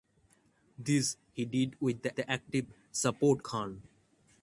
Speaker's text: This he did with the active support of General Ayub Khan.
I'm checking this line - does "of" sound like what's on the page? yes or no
no